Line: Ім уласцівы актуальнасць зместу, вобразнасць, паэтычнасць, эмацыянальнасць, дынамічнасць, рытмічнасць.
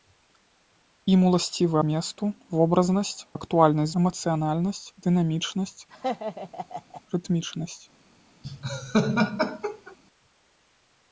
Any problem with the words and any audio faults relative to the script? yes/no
yes